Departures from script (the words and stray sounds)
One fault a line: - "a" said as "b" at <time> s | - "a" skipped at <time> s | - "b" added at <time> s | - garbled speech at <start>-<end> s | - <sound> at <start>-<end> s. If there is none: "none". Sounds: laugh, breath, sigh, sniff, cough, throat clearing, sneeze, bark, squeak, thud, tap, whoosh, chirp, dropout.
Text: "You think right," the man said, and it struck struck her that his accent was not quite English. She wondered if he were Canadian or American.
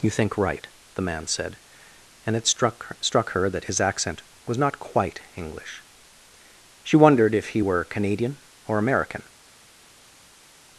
none